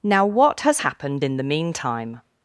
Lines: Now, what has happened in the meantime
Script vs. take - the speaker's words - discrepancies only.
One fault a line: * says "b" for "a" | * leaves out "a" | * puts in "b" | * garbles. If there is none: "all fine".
all fine